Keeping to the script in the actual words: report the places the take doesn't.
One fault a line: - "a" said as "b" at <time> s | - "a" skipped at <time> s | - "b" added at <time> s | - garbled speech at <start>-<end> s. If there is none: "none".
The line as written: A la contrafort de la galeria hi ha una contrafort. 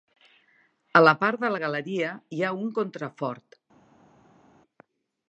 - "contrafort" said as "part" at 1.2 s
- "una" said as "un" at 2.6 s